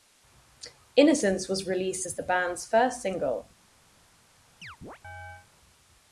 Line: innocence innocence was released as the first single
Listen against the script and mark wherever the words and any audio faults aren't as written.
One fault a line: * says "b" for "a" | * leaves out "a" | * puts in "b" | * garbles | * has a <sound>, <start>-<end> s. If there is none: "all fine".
* leaves out "innocence"
* puts in "band's"
* has a chirp, 4.6-5.5 s